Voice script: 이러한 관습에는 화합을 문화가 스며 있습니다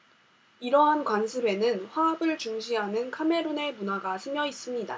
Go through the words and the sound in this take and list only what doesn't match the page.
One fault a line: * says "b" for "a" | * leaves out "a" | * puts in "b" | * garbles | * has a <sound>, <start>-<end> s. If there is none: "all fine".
* puts in "중시하는 카메룬의"